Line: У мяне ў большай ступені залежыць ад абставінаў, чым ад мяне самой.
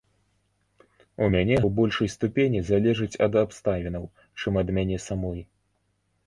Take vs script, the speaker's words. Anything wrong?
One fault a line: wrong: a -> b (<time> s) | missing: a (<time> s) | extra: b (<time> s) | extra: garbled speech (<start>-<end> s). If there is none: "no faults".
no faults